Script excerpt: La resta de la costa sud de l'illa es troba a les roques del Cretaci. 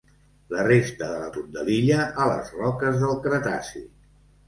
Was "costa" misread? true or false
true